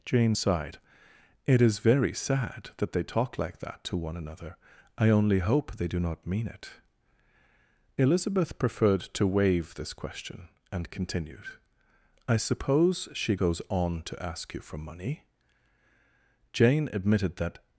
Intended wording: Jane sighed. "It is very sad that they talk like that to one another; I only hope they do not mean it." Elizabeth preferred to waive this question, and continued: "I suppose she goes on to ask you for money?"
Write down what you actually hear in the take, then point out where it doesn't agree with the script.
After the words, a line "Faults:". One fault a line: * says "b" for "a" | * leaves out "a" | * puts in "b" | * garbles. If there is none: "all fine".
Jane sighed. "It is very sad that they talk like that to one another; I only hope they do not mean it." Elizabeth preferred to waive this question, and continued: "I suppose she goes on to ask you for money?" Jane admitted that
Faults:
* puts in "Jane admitted that"